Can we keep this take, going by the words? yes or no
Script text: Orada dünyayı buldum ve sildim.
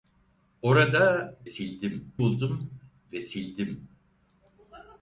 no